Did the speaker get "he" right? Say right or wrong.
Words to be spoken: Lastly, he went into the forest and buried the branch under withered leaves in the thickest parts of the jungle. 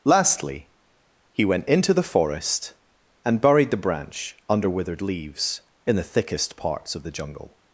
right